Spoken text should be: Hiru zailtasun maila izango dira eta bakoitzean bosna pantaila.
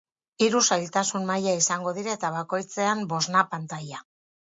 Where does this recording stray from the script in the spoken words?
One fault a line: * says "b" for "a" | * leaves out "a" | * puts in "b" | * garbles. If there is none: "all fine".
all fine